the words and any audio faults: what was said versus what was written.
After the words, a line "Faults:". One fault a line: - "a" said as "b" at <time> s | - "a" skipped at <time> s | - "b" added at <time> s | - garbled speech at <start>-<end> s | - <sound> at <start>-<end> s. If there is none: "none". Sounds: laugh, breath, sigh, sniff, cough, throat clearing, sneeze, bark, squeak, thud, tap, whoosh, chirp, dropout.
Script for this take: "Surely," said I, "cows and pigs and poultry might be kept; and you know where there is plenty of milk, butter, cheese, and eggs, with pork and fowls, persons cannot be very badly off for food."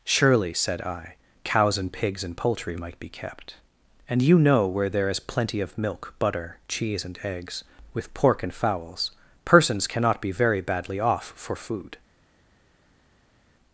"Surely," said I, "cows and pigs and poultry might be kept; and you know where there is plenty of milk, butter, cheese, and eggs, with pork and fowls, persons cannot be very badly off for food."
Faults:
none